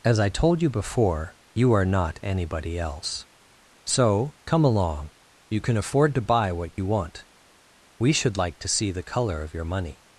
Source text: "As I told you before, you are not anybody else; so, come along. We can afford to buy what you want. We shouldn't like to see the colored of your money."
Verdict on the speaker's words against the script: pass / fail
fail